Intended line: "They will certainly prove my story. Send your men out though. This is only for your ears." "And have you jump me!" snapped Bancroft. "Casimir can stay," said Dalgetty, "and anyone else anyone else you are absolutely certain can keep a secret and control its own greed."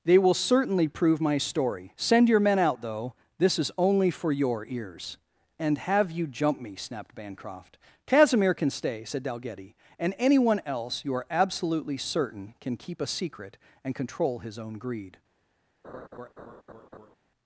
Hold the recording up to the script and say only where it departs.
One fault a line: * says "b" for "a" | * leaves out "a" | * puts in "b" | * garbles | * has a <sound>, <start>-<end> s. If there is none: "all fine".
* leaves out "anyone else"
* says "his" for "its"
* has a laugh, 15.8-17.2 s